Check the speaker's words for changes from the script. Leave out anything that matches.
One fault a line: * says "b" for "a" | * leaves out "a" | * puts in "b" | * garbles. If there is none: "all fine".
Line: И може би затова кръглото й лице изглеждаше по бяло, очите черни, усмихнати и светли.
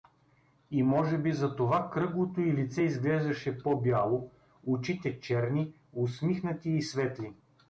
all fine